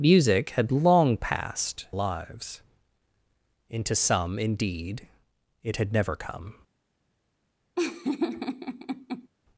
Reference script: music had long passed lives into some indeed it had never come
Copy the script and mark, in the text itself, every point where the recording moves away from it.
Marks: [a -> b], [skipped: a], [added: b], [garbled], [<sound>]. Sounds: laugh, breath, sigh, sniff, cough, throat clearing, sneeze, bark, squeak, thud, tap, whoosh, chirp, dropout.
music had long passed lives into some indeed it had never come [laugh]